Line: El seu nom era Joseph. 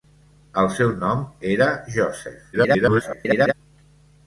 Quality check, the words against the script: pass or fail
fail